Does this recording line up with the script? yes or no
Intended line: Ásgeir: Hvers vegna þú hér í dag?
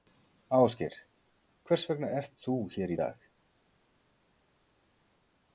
no